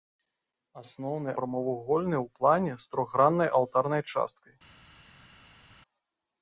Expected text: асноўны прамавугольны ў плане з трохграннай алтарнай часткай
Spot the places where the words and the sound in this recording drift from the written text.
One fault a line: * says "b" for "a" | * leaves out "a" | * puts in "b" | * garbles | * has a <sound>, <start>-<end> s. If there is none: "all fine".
all fine